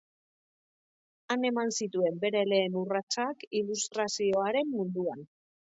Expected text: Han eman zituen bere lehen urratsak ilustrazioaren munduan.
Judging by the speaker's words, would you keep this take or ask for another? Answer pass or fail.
pass